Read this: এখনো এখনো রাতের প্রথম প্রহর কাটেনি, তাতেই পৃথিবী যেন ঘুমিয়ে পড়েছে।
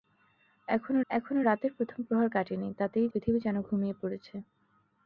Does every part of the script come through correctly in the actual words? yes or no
yes